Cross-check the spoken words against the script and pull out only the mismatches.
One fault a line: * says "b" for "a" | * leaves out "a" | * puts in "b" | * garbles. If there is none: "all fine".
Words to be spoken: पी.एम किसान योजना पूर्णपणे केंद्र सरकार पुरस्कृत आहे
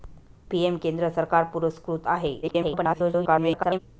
* leaves out "किसान योजना पूर्णपणे"
* garbles